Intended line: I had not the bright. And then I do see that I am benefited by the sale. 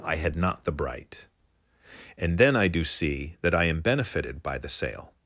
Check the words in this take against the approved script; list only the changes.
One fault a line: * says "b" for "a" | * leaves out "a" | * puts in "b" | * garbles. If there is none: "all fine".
all fine